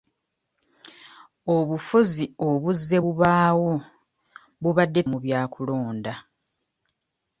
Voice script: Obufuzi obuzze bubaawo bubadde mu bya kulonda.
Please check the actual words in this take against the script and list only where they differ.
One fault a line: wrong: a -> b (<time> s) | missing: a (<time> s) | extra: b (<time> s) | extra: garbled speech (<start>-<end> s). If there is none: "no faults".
no faults